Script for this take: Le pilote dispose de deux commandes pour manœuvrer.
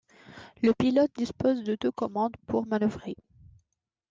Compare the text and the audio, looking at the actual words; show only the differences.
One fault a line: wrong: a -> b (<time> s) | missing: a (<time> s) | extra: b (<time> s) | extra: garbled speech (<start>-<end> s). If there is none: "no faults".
no faults